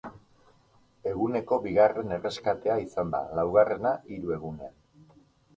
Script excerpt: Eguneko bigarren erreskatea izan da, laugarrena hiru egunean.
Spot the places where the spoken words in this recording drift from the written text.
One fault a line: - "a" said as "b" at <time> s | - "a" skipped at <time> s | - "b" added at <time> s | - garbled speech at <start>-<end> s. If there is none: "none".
none